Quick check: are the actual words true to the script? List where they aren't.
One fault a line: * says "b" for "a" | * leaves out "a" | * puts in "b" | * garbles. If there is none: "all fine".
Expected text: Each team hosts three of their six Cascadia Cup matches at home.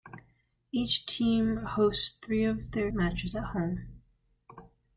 * leaves out "six Cascadia Cup"